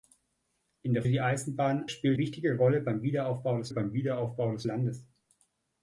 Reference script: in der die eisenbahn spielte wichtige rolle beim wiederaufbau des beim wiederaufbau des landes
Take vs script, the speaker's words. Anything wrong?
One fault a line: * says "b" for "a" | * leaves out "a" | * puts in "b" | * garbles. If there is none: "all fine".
all fine